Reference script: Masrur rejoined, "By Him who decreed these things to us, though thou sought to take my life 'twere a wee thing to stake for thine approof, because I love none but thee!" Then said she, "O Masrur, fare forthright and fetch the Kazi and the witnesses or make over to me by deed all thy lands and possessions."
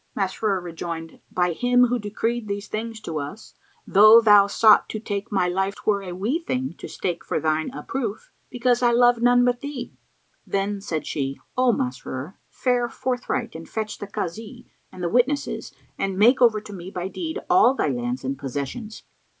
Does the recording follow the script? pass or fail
fail